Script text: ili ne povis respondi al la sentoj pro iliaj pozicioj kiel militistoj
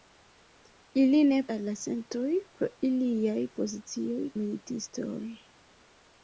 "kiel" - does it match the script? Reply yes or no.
no